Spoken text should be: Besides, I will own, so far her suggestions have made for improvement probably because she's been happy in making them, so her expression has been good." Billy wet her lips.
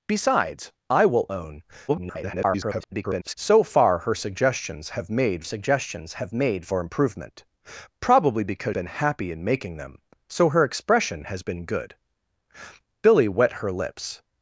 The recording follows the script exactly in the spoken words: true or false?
false